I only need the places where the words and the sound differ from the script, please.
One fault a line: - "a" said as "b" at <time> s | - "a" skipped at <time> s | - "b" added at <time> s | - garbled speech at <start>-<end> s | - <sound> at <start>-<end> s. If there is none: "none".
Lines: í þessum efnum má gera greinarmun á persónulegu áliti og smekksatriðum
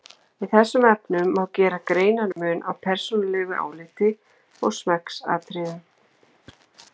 - dropout at 2.3-2.4 s